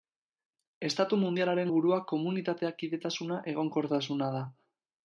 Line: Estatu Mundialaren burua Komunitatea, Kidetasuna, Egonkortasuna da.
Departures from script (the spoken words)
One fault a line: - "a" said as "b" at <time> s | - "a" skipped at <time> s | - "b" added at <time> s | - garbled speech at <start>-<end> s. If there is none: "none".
none